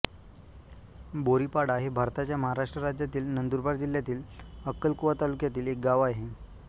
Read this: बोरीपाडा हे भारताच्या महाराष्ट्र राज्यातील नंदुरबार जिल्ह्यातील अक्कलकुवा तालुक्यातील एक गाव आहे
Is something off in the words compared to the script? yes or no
no